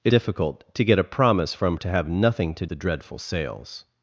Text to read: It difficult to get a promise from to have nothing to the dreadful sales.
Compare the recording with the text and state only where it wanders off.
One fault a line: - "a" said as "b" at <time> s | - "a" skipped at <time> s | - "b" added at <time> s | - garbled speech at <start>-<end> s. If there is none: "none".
none